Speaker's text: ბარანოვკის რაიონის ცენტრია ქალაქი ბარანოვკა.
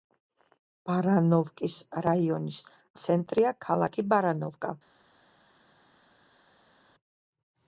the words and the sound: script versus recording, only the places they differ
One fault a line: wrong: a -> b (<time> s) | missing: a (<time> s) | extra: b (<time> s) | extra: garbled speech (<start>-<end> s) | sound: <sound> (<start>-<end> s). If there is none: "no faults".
no faults